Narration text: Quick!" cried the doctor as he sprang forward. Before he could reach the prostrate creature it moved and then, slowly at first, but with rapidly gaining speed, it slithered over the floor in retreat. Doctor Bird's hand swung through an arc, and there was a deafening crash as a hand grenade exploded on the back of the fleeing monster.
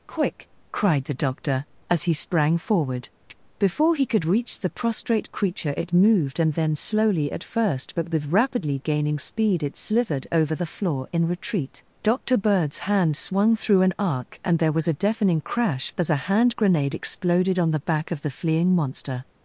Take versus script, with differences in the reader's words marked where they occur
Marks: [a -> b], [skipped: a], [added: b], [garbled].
Quick!" cried the doctor as he sprang forward. Before he could reach the prostrate creature it moved and then, slowly at first, but with rapidly gaining speed, it slithered over the floor in retreat. Doctor Bird's hand swung through an arc, and there was a deafening crash as a hand grenade exploded on the back of the fleeing monster.